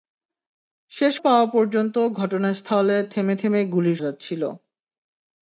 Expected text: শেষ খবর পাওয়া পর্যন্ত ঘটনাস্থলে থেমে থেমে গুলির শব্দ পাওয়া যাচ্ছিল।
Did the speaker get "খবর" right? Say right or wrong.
wrong